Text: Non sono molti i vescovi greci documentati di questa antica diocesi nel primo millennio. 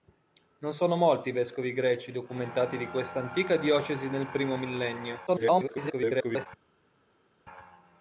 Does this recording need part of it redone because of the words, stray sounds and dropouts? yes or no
yes